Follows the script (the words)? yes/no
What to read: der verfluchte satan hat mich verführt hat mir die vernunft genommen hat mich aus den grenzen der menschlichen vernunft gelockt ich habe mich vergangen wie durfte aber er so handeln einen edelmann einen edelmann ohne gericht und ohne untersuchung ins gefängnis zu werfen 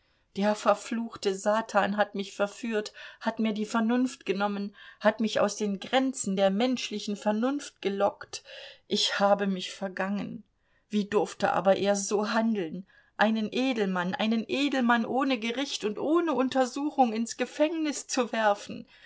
yes